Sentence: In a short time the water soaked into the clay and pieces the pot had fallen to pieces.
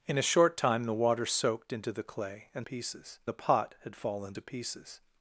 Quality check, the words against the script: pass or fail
pass